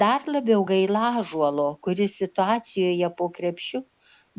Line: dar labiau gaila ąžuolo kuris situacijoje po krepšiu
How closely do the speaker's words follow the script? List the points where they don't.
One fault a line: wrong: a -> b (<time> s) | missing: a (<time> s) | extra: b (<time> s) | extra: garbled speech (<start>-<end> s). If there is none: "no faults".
no faults